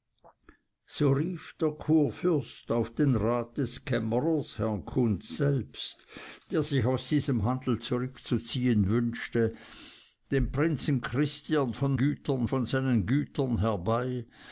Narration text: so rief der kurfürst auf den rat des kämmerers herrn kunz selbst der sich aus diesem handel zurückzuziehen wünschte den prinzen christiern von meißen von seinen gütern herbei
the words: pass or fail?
fail